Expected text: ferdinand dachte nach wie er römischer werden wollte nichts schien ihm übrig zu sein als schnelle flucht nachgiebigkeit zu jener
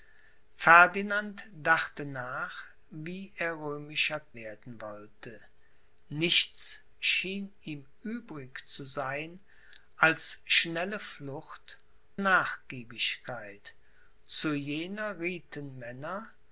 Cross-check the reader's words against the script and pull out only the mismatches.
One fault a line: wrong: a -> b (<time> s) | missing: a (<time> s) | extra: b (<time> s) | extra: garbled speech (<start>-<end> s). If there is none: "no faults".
no faults